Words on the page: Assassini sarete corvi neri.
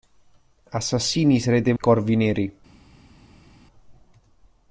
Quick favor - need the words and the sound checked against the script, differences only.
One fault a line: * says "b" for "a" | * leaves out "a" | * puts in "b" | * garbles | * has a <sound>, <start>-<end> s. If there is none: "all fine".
all fine